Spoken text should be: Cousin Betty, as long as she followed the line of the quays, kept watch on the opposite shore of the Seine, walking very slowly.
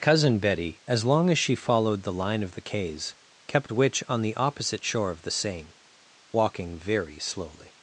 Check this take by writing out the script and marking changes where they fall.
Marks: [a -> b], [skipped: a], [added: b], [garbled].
Cousin Betty, as long as she followed the line of the quays, kept [watch -> witch] on the opposite shore of the Seine, walking very slowly.